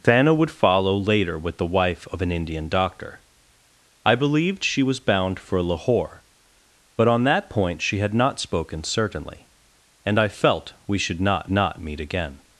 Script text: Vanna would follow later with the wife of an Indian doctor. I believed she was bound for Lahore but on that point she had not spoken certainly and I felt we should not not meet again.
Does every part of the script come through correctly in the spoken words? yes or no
yes